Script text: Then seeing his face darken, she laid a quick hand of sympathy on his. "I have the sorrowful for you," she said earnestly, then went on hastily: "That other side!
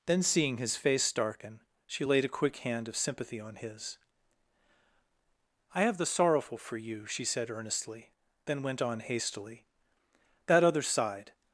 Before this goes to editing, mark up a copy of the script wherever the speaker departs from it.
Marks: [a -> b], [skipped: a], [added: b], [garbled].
Then seeing his face darken, she laid a quick hand of sympathy on his. "I have the sorrowful for you," she said earnestly, then went on hastily: "That other side!